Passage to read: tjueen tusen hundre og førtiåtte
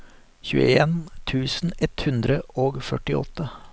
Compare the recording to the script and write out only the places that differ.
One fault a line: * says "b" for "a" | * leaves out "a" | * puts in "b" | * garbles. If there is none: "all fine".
* puts in "ett"